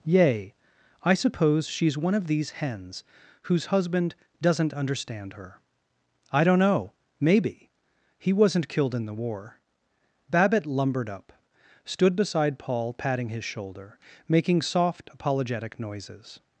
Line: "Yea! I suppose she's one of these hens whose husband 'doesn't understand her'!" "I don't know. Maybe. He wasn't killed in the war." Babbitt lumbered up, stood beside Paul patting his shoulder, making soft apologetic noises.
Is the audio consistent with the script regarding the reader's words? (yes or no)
yes